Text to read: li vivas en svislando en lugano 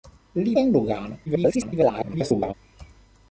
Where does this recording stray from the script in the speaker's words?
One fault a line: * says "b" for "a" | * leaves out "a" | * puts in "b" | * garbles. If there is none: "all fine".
* leaves out "vivas en svislando"
* garbles